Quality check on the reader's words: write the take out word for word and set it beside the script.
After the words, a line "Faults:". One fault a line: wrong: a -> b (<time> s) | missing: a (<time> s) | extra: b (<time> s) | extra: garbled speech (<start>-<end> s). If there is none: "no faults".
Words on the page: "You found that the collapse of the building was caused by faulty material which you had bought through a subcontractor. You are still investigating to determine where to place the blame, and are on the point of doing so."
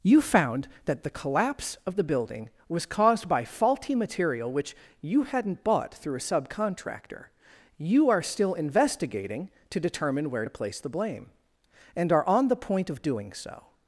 "You found that the collapse of the building was caused by faulty material which you hadn't bought through a subcontractor. You are still investigating to determine where to place the blame, and are on the point of doing so."
Faults:
wrong: had -> hadn't (5.2 s)